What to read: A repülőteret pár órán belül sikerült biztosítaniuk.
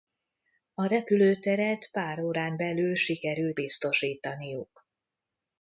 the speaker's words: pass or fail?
pass